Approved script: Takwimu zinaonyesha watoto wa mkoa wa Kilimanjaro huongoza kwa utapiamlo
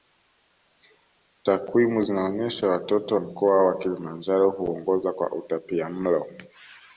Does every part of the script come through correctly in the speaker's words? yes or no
no